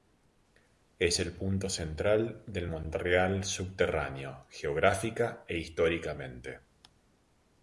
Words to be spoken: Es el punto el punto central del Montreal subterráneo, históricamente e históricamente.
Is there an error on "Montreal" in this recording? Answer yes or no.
no